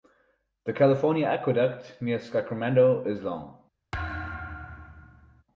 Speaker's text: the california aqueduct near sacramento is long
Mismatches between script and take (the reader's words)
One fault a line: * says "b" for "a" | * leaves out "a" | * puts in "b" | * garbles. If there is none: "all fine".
all fine